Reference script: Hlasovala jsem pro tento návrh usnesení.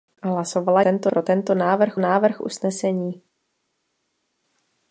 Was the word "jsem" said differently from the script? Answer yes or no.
yes